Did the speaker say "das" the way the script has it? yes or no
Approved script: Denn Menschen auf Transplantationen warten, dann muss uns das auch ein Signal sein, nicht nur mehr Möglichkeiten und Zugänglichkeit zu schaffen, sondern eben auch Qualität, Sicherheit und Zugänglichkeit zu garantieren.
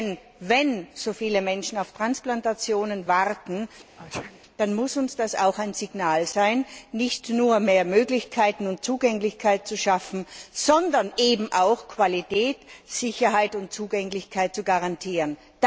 yes